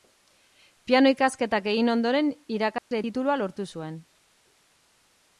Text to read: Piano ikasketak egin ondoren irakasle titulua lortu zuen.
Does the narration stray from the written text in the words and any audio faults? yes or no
yes